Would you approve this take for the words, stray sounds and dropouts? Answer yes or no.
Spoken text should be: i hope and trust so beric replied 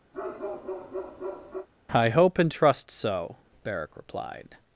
no